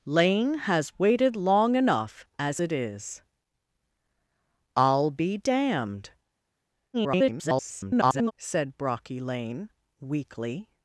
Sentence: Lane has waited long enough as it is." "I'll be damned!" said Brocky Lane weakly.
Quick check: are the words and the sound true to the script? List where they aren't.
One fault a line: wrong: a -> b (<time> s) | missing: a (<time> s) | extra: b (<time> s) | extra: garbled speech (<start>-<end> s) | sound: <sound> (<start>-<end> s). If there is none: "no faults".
extra: garbled speech (6.9-8.3 s)